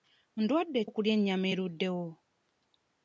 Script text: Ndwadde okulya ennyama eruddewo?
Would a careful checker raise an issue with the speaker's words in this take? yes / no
no